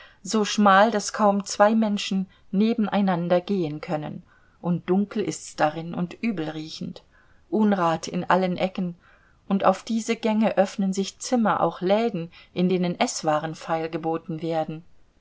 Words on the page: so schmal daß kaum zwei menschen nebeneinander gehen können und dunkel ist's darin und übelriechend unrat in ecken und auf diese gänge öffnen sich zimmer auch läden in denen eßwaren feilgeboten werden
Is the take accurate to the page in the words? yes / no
no